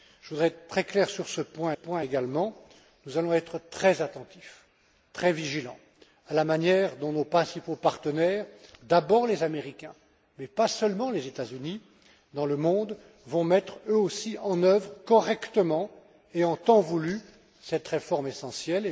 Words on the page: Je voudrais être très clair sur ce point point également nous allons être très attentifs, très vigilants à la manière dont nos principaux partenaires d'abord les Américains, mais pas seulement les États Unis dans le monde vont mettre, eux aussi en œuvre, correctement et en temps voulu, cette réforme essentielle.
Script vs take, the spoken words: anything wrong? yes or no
no